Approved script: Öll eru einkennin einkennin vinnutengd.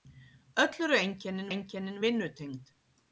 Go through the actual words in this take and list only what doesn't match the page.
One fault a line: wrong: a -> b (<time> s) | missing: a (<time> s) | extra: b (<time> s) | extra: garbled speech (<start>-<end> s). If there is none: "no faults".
no faults